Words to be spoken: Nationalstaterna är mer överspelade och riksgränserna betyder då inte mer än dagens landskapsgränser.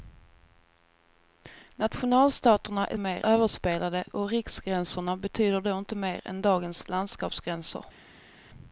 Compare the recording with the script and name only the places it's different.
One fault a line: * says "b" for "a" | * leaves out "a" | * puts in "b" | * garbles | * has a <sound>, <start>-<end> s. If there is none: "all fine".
all fine